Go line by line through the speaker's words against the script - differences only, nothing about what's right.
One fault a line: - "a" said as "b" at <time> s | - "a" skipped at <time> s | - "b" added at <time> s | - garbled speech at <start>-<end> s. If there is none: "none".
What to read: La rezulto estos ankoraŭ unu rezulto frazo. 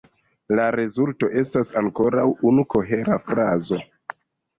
- "estos" said as "estas" at 1.4 s
- "rezulto" said as "kohera" at 2.7 s